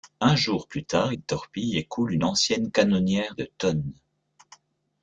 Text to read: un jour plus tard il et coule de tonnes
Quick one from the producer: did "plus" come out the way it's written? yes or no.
yes